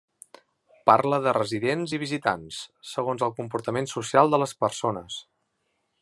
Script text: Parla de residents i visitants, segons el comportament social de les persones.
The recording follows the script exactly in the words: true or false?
true